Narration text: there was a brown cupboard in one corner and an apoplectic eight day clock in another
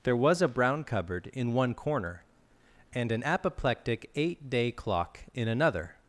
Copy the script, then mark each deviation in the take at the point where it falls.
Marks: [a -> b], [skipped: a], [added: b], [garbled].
there was a brown cupboard in one corner and an apoplectic eight day clock in another